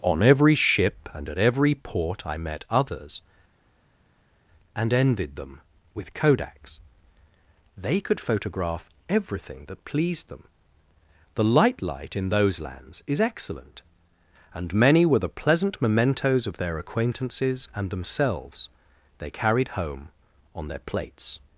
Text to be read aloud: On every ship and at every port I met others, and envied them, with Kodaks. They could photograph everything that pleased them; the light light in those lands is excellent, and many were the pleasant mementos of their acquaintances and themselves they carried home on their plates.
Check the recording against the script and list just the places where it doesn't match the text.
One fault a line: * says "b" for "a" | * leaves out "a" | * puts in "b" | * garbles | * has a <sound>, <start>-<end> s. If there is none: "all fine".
all fine